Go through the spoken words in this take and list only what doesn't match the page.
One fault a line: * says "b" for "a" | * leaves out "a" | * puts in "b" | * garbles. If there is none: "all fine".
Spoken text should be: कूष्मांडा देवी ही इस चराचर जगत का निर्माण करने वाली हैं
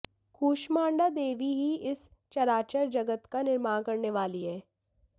all fine